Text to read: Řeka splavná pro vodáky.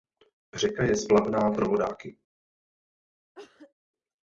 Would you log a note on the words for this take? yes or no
yes